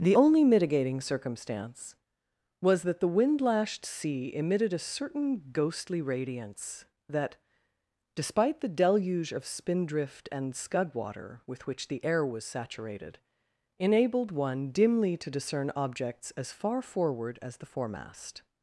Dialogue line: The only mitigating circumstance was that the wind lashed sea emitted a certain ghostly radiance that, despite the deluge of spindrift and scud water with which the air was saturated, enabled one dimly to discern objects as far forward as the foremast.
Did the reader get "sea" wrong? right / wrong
right